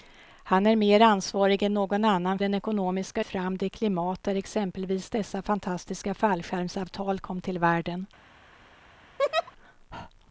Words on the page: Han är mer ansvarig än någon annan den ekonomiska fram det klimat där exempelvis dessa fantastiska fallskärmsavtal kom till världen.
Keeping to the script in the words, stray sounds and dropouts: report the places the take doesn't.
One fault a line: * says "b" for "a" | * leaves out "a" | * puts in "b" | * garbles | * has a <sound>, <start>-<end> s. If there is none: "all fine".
* has a laugh, 9.2-9.5 s